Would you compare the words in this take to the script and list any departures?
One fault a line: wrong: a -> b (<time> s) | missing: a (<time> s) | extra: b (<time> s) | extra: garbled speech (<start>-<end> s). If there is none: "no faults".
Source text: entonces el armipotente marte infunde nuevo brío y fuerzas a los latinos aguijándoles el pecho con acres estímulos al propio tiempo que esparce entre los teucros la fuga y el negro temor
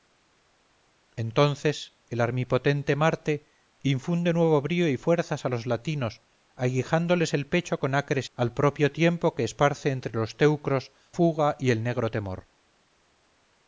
missing: estímulos (8.3 s)
missing: la (10.9 s)